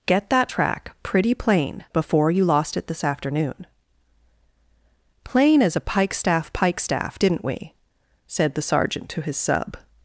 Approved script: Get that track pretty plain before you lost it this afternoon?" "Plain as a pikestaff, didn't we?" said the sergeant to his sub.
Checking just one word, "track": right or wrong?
right